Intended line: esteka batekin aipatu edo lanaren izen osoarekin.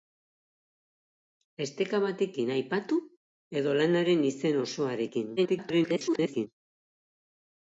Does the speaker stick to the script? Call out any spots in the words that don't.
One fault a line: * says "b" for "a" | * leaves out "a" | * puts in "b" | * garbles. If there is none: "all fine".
* garbles